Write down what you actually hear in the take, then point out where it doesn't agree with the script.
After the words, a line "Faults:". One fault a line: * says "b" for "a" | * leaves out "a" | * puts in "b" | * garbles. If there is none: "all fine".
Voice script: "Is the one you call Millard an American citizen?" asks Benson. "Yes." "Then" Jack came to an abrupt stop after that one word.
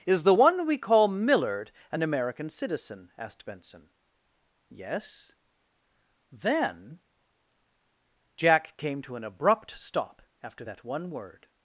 "Is the one we call Millard an American citizen?" asked Benson. "Yes." "Then" Jack came to an abrupt stop after that one word.
Faults:
* says "we" for "you"
* says "asked" for "asks"